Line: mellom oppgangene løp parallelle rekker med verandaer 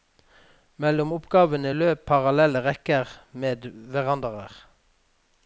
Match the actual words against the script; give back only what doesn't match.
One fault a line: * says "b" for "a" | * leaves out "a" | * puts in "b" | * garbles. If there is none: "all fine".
all fine